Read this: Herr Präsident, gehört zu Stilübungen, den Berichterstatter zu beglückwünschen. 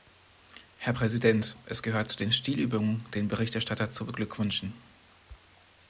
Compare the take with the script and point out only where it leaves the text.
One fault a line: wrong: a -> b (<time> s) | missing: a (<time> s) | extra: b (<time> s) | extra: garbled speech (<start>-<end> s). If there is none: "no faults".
extra: es (1.6 s)
extra: den (2.2 s)